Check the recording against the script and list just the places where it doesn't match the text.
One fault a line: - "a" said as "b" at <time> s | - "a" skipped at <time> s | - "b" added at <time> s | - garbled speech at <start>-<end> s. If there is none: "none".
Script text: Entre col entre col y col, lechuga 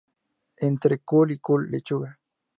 - "entre col" skipped at 1.3 s